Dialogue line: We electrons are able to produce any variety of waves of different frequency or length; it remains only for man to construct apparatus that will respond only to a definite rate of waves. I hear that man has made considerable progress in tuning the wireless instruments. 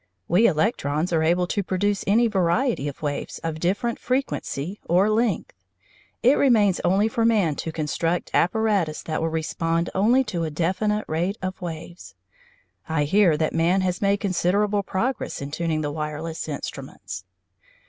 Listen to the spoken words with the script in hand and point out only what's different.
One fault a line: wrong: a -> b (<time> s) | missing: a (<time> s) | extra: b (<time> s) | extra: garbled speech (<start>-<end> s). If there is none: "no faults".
no faults